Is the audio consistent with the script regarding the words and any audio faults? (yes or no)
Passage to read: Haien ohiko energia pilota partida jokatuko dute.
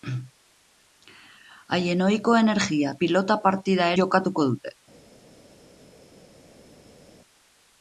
yes